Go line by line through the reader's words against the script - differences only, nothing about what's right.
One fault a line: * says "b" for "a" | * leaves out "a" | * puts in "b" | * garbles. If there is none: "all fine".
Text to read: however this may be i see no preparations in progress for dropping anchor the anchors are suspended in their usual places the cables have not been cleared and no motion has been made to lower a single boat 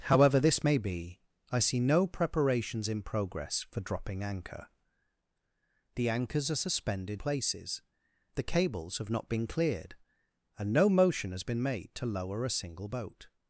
* leaves out "in their usual"